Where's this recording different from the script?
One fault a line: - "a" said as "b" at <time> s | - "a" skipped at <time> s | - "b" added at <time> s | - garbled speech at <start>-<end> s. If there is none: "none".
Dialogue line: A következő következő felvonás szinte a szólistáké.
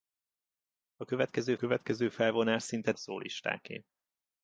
none